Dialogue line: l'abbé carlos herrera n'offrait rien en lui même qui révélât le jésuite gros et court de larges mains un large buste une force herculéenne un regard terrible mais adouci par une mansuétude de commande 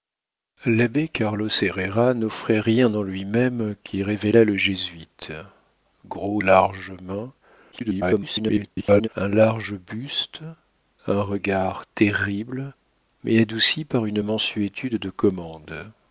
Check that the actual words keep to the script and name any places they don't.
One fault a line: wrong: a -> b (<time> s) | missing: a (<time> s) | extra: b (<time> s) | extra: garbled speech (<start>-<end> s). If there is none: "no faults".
missing: et court de (6.4 s)
extra: garbled speech (7.7-9.1 s)
missing: une force herculéenne (10.4 s)